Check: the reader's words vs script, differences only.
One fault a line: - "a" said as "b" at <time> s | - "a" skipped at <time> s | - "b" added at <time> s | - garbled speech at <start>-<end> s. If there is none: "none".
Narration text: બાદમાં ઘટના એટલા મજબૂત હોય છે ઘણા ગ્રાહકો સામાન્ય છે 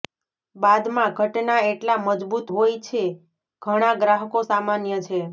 none